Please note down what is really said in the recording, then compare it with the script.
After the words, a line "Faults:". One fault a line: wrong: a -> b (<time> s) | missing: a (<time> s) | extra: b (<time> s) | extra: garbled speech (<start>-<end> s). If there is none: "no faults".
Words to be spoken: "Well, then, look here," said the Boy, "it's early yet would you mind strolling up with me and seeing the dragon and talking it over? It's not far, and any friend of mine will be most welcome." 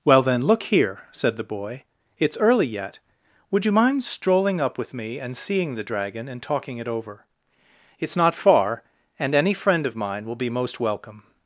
"Well, then, look here," said the Boy, "it's early yet would you mind strolling up with me and seeing the dragon and talking it over? It's not far, and any friend of mine will be most welcome."
Faults:
no faults